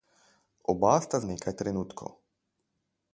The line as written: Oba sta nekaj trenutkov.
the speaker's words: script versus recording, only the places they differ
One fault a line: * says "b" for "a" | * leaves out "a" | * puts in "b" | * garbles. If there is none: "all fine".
all fine